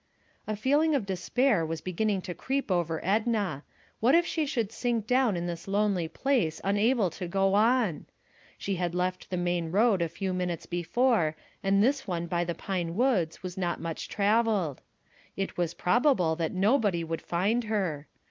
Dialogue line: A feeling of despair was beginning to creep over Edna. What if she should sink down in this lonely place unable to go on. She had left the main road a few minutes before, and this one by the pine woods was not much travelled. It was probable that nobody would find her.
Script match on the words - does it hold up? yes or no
yes